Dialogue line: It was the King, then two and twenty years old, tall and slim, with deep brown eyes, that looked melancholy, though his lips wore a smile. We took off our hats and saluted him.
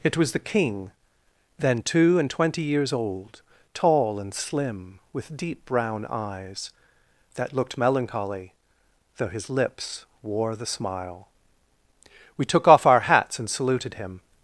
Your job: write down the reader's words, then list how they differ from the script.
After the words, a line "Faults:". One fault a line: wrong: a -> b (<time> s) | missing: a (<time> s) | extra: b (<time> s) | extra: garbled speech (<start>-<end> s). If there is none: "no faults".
It was the King, then two and twenty years old, tall and slim, with deep brown eyes, that looked melancholy, though his lips wore the smile. We took off our hats and saluted him.
Faults:
wrong: a -> the (10.6 s)